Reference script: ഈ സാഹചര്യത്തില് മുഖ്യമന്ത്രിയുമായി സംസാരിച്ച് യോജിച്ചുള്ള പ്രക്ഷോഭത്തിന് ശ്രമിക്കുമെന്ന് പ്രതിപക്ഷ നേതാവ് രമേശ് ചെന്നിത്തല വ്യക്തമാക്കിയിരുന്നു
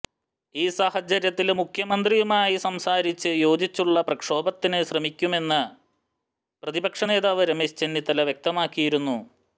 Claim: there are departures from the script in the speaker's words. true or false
false